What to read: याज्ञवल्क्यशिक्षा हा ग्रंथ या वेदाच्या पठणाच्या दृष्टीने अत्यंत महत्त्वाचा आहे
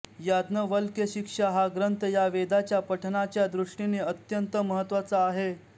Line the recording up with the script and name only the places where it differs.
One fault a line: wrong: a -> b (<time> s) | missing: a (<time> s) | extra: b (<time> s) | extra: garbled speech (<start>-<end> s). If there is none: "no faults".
no faults